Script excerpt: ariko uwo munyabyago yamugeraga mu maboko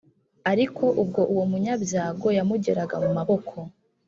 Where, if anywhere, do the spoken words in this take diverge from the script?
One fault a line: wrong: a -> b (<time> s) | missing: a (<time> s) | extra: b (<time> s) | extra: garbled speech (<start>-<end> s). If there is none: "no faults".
extra: ubwo (1.0 s)